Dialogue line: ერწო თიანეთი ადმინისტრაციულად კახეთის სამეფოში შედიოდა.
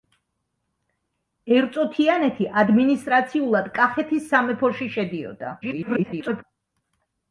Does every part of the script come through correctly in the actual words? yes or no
no